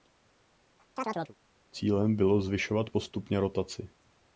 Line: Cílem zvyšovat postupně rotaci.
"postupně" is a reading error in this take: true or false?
false